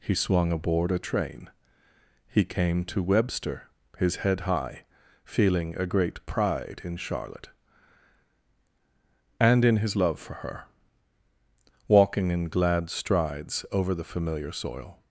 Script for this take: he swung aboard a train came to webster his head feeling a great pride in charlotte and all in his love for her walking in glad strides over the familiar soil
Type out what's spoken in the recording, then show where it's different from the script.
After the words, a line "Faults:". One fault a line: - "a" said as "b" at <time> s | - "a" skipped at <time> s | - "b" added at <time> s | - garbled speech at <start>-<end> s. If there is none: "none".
he swung aboard a train he came to webster his head high feeling a great pride in charlotte and in his love for her walking in glad strides over the familiar soil
Faults:
- "he" added at 2.3 s
- "high" added at 4.4 s
- "all" skipped at 9.7 s